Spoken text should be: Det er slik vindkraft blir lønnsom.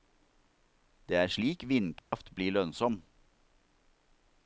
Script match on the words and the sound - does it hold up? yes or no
no